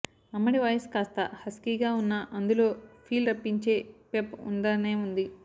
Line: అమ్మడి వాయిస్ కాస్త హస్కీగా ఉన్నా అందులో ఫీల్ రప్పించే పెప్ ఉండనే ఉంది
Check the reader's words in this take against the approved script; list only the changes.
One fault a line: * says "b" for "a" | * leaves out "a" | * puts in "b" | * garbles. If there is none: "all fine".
all fine